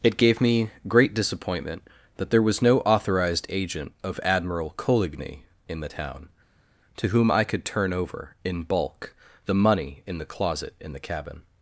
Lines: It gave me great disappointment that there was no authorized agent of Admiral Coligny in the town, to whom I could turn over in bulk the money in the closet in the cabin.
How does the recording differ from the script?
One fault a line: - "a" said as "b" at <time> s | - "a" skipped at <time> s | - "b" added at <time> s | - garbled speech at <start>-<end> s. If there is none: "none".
none